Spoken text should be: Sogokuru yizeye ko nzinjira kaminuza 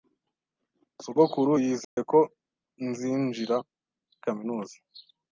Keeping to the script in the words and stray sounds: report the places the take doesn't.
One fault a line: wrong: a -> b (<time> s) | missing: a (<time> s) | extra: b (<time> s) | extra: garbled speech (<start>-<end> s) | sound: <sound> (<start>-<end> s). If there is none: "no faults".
sound: dropout (1.8-2.0 s)